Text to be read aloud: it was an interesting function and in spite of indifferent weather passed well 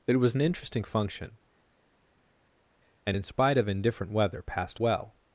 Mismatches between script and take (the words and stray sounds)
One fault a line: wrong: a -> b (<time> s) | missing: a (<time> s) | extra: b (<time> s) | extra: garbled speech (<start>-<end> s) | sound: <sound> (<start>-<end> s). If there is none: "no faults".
no faults